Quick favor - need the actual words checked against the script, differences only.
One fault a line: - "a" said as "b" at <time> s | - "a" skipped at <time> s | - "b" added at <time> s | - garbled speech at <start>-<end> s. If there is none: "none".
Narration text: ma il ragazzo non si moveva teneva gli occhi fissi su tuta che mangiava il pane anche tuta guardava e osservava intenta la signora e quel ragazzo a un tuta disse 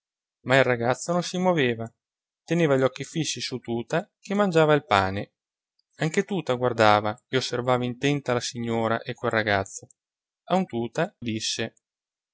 none